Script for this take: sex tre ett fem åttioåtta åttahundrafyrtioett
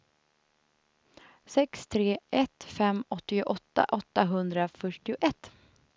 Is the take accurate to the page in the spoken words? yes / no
yes